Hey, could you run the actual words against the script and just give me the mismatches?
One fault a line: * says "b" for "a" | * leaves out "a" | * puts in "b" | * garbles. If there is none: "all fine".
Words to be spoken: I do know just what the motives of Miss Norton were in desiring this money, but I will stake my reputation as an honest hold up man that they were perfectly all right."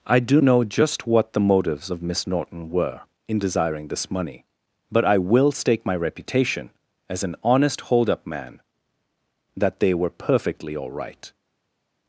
all fine